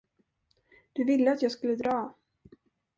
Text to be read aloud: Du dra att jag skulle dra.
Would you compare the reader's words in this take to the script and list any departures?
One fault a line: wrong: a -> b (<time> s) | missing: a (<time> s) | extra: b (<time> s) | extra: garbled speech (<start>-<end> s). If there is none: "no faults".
wrong: dra -> ville (1.0 s)